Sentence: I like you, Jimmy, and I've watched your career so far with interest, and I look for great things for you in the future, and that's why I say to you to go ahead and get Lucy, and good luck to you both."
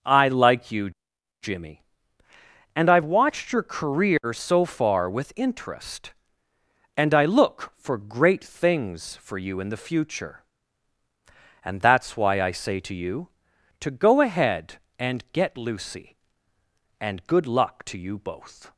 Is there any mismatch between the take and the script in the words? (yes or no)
no